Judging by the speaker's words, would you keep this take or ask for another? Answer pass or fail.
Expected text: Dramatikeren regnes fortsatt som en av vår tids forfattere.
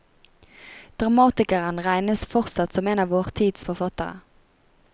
pass